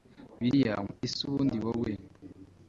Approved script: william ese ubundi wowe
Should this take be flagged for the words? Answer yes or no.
no